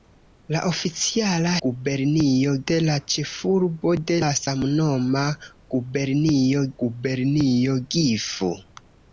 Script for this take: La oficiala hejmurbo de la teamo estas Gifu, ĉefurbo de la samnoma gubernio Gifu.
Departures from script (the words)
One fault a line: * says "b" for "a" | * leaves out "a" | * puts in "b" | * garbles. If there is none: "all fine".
* says "gubernio" for "hejmurbo"
* leaves out "teamo estas Gifu"
* puts in "gubernio"